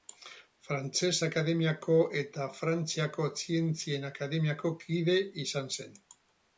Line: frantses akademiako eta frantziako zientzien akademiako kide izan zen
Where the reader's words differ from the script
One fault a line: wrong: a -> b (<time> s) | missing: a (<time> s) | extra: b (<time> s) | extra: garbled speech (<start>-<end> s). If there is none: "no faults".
no faults